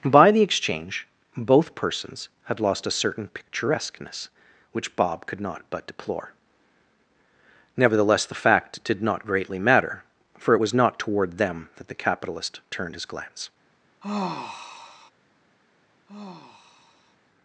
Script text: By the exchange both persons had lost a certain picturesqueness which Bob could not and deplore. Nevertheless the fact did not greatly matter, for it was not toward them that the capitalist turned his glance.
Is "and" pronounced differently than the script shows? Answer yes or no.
yes